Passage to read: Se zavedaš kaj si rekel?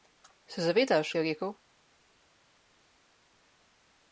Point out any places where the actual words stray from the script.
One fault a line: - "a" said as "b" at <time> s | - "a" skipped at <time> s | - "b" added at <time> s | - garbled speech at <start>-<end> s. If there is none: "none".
- "kaj" skipped at 1.1 s